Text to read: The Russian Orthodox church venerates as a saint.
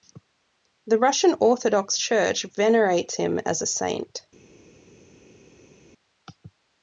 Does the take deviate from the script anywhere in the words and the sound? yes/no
yes